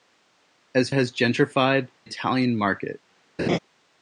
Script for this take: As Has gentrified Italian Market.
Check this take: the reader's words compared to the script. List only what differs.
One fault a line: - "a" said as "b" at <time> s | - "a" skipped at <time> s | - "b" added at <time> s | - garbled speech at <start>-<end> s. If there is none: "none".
none